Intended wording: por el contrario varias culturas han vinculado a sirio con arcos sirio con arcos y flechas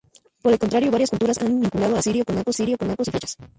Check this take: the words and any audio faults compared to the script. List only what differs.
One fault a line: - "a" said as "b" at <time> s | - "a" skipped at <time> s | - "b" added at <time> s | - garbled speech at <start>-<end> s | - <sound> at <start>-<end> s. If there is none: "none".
none